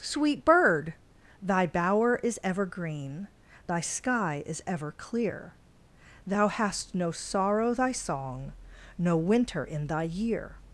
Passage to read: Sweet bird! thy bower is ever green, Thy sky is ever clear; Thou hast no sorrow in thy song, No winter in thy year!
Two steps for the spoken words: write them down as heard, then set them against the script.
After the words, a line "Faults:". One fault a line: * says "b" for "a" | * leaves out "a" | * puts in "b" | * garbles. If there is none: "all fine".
Sweet bird! thy bower is ever green, Thy sky is ever clear; Thou hast no sorrow thy song, No winter in thy year!
Faults:
* leaves out "in"